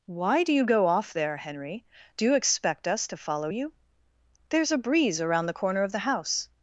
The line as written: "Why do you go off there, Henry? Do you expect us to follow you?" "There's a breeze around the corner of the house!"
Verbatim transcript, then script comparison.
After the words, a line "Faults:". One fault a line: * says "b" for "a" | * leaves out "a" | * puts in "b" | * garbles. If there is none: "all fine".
"Why do you go off there, Henry? Do you expect us to follow you?" "There's a breeze around the corner of the house!"
Faults:
all fine